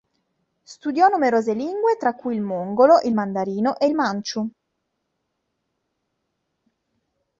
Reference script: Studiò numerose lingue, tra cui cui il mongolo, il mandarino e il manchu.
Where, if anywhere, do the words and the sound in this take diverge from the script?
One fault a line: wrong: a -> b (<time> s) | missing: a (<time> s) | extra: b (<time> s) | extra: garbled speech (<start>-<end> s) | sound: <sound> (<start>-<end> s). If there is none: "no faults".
missing: cui (2.3 s)